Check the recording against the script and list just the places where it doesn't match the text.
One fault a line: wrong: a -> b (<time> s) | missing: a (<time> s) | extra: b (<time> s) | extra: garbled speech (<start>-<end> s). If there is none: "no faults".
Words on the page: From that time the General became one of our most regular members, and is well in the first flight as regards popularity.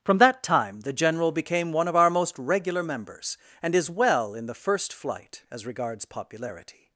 no faults